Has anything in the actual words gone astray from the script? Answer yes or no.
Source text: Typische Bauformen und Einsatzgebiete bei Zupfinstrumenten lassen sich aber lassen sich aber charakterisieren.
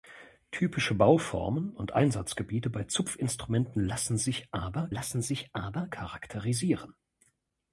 no